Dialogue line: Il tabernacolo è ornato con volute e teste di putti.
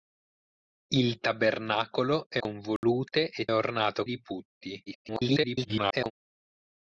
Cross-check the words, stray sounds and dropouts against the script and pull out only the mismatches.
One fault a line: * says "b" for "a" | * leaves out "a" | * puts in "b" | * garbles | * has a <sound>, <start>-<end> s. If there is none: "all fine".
* leaves out "ornato"
* has a dropout, 2.8-2.8 s
* says "ornato" for "teste"
* garbles